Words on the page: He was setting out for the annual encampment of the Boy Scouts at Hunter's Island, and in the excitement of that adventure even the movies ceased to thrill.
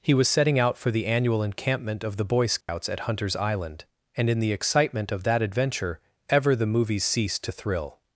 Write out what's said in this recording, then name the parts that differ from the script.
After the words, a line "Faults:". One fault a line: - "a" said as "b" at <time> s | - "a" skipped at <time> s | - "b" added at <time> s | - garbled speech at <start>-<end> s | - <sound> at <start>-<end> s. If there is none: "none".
He was setting out for the annual encampment of the Boy Scouts at Hunter's Island, and in the excitement of that adventure ever the movies ceased to thrill.
Faults:
- dropout at 2.6-2.7 s
- "even" said as "ever" at 6.3 s